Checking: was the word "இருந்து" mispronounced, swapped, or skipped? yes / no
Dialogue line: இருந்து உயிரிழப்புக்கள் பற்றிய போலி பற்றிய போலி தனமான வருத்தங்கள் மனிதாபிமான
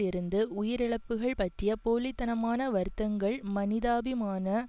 no